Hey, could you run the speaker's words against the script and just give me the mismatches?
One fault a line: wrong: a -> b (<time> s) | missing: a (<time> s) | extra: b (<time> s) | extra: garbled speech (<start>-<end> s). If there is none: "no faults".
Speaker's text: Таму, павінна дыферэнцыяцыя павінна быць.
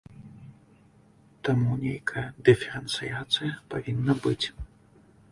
wrong: павінна -> нейкая (1.8 s)